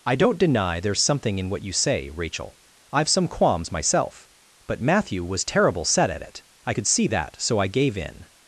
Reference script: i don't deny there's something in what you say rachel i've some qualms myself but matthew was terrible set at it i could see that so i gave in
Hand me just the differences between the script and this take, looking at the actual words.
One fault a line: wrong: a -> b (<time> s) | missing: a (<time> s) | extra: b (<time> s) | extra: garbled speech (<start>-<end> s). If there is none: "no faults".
no faults